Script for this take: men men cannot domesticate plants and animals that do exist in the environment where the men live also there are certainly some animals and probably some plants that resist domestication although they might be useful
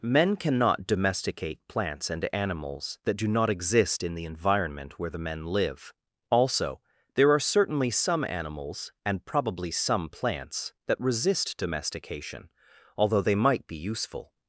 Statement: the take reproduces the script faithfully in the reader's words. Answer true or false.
false